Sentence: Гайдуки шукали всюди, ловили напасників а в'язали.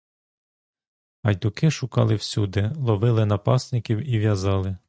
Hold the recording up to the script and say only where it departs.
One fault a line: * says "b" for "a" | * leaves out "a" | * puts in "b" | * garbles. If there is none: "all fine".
* says "і" for "а"